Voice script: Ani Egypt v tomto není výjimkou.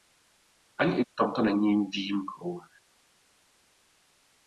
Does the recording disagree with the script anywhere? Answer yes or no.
yes